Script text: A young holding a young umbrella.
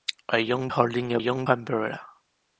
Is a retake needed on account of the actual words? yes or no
no